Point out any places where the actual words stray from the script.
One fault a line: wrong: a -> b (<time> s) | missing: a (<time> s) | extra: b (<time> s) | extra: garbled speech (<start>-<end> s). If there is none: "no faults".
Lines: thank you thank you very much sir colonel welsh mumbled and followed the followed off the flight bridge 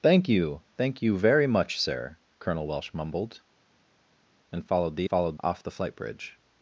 no faults